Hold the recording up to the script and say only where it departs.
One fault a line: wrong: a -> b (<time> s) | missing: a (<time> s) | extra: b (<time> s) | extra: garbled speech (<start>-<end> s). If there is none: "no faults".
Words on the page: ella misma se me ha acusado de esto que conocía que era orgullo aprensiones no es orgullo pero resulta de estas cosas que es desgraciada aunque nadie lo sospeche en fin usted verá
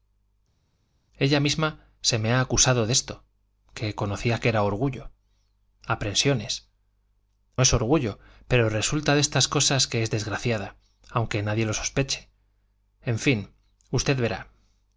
missing: no (6.7 s)